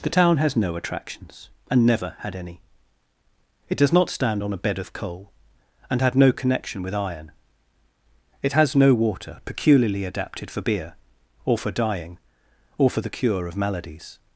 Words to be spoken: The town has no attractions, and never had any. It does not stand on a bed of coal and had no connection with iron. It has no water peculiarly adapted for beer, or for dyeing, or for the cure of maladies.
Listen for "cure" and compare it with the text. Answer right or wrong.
right